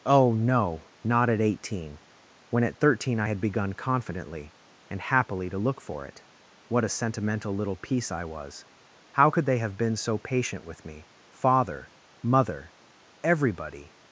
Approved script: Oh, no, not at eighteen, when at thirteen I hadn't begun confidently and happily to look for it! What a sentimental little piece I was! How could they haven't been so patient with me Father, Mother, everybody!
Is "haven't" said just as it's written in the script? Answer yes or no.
no